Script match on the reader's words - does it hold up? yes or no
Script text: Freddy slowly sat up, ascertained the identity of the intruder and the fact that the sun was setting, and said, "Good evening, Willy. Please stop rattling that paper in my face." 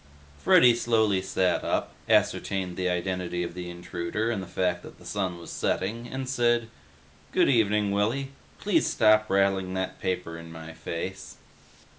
yes